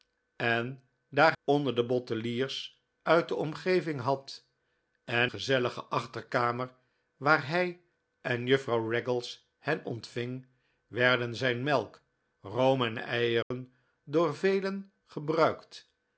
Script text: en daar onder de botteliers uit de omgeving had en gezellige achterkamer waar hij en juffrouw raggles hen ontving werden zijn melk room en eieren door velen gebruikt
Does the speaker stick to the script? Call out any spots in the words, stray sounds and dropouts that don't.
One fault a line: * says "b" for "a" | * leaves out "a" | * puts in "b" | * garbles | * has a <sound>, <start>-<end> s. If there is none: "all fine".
* has a dropout, 13.4-13.5 s